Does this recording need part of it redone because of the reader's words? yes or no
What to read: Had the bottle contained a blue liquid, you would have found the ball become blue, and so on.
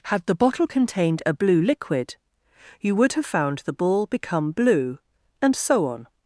no